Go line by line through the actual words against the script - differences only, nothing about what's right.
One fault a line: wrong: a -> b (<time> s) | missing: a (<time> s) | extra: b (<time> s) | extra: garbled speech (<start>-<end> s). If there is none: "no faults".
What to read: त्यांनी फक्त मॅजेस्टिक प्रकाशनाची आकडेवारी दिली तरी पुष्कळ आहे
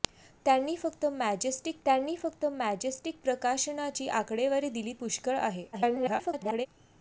extra: त्यांनी फक्त मॅजेस्टिक (1.9 s)
missing: तरी (4.9 s)
extra: garbled speech (5.7-6.7 s)